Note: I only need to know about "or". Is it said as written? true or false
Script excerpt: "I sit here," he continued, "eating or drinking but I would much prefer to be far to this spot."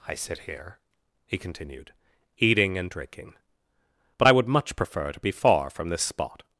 false